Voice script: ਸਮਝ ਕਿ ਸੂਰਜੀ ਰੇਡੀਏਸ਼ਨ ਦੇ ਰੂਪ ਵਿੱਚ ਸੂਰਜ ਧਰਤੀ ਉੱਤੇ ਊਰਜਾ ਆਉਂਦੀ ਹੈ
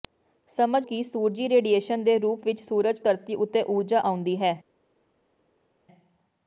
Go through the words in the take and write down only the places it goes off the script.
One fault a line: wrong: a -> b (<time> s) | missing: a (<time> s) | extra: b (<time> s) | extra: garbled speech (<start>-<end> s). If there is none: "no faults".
no faults